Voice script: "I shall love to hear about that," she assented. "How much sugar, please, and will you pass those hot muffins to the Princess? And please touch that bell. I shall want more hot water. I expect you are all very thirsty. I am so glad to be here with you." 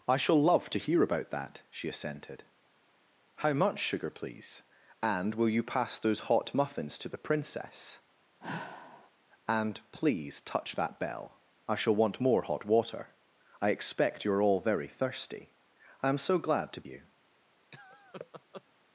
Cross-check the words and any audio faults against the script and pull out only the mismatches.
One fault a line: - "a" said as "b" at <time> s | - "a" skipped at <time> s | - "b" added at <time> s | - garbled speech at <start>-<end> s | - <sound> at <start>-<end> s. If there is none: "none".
- sigh at 8.4-9.1 s
- "be here with" skipped at 16.9 s
- laugh at 17.7-18.6 s